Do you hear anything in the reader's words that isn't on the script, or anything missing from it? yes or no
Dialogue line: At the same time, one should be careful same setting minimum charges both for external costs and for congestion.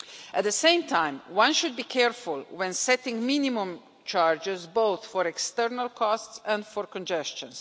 yes